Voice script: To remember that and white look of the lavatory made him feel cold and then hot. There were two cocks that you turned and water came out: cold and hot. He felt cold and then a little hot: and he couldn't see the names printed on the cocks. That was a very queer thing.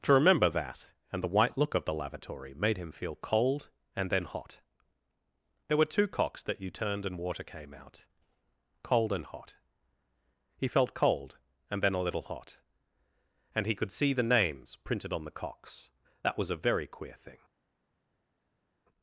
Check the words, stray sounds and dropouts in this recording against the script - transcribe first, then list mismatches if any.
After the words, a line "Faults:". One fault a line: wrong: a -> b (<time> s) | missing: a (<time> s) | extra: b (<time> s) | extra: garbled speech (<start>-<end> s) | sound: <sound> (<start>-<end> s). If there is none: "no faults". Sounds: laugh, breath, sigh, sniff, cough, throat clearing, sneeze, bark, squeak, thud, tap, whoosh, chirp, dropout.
To remember that and the white look of the lavatory made him feel cold and then hot. There were two cocks that you turned and water came out: cold and hot. He felt cold and then a little hot: and he could see the names printed on the cocks. That was a very queer thing.
Faults:
extra: the (1.2 s)
wrong: couldn't -> could (13.8 s)